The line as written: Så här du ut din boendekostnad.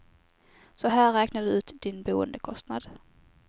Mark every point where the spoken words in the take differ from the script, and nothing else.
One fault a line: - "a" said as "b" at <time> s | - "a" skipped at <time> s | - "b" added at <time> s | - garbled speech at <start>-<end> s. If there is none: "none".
- "räknar" added at 1.1 s